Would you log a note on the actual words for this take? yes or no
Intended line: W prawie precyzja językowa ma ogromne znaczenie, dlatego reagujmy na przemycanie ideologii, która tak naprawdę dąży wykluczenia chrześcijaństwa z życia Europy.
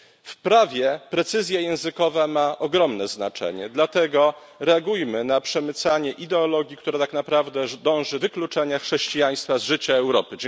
no